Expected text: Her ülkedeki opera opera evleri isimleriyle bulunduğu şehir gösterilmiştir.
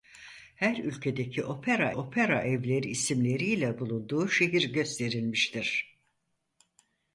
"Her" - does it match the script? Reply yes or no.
yes